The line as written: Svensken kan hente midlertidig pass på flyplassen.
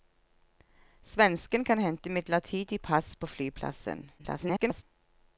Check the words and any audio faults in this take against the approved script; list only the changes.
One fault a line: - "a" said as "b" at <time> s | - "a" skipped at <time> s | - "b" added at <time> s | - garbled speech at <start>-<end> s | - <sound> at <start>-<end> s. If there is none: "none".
- garbled speech at 4.2-4.8 s